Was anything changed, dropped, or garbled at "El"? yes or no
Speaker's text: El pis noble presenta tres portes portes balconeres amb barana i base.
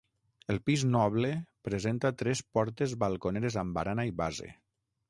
no